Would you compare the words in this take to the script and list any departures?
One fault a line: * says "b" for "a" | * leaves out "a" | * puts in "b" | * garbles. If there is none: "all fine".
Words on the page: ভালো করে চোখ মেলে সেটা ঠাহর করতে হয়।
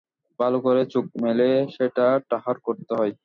all fine